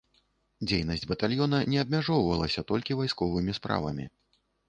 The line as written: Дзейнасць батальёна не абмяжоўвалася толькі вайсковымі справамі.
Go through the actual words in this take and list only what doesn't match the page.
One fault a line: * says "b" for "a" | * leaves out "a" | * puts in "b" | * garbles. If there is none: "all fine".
all fine